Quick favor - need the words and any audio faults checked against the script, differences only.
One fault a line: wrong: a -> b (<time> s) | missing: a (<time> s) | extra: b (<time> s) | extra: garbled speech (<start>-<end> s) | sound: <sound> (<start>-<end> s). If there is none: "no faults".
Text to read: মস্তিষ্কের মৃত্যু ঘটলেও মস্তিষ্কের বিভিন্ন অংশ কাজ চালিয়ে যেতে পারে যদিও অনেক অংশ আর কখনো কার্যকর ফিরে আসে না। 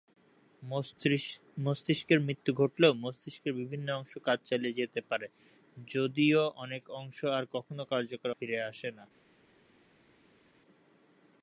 no faults